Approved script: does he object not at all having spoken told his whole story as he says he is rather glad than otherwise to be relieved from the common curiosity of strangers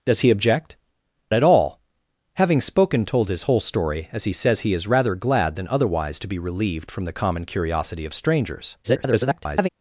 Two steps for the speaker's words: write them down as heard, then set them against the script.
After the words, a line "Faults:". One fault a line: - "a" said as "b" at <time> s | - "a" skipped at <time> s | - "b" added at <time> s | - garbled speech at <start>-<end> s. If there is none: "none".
does he object at all having spoken told his whole story as he says he is rather glad than otherwise to be relieved from the common curiosity of strangers [garbled]
Faults:
- "not" skipped at 0.8 s
- garbled speech at 8.8-9.7 s